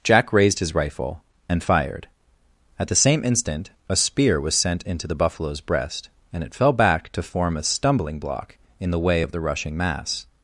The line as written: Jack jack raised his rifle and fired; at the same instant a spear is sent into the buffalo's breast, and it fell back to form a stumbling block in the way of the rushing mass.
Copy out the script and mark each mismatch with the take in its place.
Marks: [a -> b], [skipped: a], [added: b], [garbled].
Jack [skipped: jack] raised his rifle and fired; at the same instant a spear [is -> was] sent into the buffalo's breast, and it fell back to form a stumbling block in the way of the rushing mass.